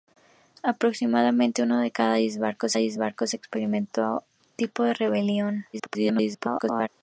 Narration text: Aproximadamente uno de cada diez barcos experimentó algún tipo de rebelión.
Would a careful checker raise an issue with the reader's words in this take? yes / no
yes